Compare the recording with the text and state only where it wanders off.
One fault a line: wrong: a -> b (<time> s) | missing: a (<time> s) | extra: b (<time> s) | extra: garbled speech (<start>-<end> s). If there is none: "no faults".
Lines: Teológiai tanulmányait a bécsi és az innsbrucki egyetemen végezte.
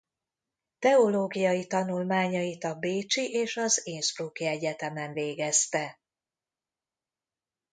no faults